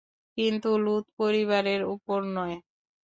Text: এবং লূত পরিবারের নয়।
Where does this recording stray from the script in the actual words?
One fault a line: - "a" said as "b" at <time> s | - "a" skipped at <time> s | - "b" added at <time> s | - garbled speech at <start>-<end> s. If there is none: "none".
- "এবং" said as "কিন্তু" at 0.4 s
- "উপর" added at 1.9 s